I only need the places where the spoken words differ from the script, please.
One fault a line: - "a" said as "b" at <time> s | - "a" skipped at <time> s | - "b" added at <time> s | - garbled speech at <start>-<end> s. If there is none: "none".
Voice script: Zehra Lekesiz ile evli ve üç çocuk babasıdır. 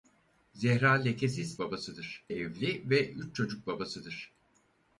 - "ile" said as "babasıdır" at 1.6 s